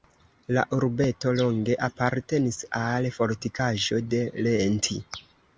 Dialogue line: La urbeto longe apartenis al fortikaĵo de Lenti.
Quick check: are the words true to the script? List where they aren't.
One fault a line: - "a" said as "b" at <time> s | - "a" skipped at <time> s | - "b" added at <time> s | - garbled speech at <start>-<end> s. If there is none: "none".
none